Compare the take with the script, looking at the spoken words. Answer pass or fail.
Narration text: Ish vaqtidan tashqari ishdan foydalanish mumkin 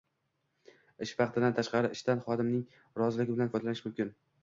fail